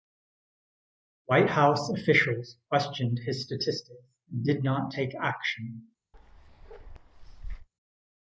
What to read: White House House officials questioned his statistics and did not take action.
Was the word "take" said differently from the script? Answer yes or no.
no